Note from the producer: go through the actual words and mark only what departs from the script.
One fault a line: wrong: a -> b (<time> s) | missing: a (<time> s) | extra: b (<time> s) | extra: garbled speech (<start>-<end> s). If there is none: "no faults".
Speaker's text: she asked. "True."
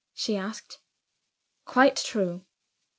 extra: Quite (1.7 s)